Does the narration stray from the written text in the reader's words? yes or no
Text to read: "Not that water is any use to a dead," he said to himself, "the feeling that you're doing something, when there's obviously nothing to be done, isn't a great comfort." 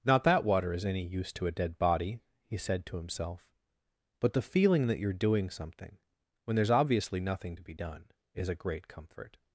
yes